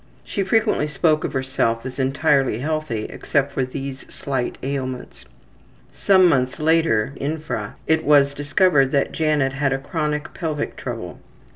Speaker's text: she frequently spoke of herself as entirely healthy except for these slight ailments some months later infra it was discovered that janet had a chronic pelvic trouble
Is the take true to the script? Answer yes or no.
yes